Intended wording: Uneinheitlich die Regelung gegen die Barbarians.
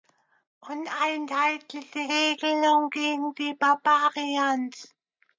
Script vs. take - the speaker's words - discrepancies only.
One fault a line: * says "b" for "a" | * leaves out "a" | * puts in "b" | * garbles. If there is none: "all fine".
all fine